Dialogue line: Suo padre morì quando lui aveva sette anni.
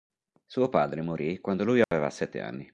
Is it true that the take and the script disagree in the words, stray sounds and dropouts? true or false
true